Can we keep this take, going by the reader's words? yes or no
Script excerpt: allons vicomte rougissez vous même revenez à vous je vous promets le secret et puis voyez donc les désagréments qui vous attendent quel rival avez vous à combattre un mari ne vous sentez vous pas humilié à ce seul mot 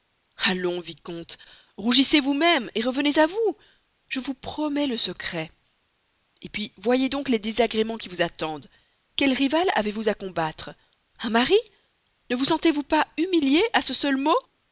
yes